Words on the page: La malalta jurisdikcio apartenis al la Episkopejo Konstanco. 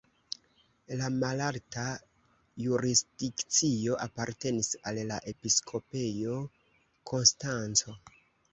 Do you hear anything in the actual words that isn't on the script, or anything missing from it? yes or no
no